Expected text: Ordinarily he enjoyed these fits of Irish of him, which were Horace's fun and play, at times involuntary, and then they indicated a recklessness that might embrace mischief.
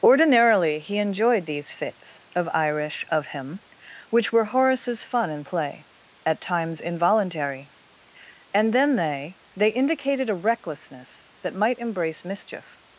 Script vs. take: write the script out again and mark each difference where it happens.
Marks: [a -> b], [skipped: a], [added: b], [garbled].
Ordinarily he enjoyed these fits of Irish of him, which were Horace's fun and play, at times involuntary, and then they [added: they] indicated a recklessness that might embrace mischief.